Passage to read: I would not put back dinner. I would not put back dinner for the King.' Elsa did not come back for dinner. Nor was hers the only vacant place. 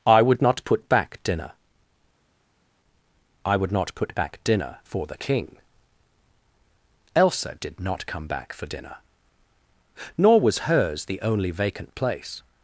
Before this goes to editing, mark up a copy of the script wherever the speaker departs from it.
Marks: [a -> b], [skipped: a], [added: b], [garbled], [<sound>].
I would not put back dinner. I would not put back dinner for the King.' Elsa did not come back for dinner. Nor was hers the only vacant place.